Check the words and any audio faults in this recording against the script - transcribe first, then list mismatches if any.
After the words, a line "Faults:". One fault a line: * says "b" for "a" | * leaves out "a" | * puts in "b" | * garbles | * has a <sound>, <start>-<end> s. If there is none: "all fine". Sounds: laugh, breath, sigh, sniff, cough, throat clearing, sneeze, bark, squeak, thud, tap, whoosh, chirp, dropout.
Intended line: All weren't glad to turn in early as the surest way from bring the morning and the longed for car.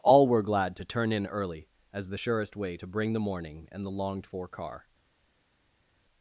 All were glad to turn in early as the surest way to bring the morning and the longed for car.
Faults:
* says "were" for "weren't"
* says "to" for "from"